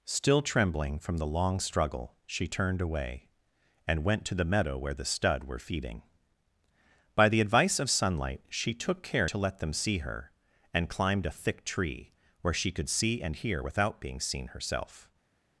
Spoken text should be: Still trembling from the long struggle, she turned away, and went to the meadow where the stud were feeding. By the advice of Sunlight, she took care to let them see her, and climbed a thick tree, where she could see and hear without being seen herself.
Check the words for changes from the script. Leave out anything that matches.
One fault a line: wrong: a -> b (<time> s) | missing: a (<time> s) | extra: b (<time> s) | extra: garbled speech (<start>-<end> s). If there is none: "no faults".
no faults